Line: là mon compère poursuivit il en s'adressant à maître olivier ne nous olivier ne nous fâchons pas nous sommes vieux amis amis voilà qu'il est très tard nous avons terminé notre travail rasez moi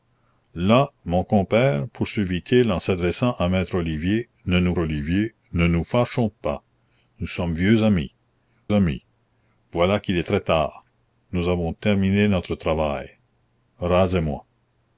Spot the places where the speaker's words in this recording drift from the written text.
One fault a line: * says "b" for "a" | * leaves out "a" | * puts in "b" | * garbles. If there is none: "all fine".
all fine